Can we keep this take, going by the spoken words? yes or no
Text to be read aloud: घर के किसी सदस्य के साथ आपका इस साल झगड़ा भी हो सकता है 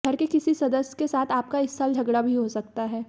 yes